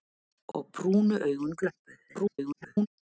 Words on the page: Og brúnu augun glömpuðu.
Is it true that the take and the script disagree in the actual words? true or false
true